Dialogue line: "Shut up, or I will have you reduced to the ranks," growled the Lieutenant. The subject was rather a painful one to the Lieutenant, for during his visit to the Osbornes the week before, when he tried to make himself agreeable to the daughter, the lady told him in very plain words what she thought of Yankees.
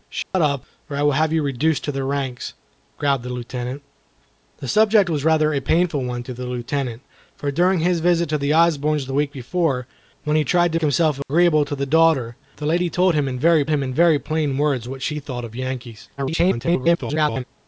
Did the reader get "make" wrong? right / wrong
wrong